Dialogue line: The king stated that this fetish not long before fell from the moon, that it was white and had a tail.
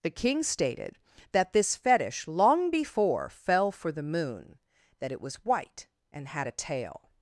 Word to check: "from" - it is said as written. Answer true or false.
false